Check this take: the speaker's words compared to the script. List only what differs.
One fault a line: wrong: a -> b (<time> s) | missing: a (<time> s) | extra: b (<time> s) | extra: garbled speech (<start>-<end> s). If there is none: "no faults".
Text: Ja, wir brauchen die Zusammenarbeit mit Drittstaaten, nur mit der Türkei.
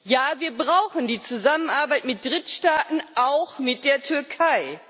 wrong: nur -> auch (3.1 s)